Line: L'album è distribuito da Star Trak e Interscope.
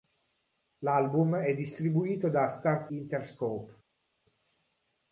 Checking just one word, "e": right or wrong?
wrong